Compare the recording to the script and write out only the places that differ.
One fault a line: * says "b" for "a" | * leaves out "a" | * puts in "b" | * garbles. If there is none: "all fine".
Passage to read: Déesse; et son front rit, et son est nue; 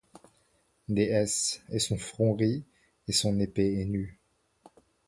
* puts in "épée"